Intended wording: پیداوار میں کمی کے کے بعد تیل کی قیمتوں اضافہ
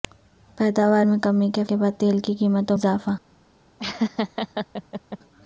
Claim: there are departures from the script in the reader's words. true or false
false